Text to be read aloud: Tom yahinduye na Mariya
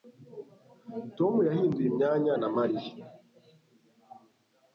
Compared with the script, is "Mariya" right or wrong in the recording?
right